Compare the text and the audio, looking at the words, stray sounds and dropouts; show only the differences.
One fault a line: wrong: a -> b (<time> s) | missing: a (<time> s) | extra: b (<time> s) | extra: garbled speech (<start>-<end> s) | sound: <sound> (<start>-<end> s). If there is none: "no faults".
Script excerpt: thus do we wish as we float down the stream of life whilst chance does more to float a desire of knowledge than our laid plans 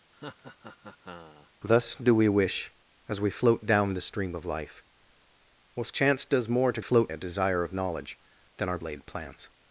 sound: laugh (0.1-1.5 s)